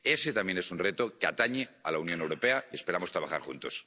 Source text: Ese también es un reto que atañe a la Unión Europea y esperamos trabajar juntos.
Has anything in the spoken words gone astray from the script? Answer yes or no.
no